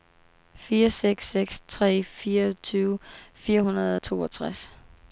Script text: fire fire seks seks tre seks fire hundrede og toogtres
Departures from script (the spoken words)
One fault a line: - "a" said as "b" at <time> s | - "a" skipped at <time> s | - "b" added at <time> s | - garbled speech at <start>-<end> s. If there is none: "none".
- "fire" skipped at 0.9 s
- "seks" said as "fireogtyve" at 2.0 s